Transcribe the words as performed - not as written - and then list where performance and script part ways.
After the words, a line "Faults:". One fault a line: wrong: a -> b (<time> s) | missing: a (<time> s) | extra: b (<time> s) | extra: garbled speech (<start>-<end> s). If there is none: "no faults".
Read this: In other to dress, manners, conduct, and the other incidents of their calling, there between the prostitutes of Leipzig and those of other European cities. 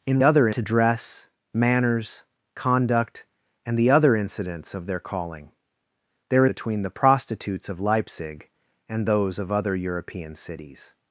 In other to dress, manners, conduct, and the other incidents of their calling, there between the prostitutes of Leipzig and those of other European cities.
Faults:
no faults